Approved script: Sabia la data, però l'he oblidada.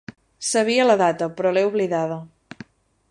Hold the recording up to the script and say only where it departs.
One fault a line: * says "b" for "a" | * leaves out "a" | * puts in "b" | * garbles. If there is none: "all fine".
all fine